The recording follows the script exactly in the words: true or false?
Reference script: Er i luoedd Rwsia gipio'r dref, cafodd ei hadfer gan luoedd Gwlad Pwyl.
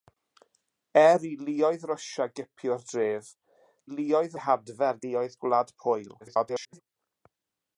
false